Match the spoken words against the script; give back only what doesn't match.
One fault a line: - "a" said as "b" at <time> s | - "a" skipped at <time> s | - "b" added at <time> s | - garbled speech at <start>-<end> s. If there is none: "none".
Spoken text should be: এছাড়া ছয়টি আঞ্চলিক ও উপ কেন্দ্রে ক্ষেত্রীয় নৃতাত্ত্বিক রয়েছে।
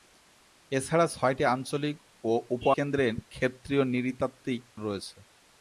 none